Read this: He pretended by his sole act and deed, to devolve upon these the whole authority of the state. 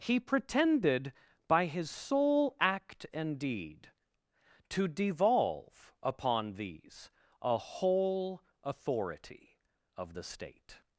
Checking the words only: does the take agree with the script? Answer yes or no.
no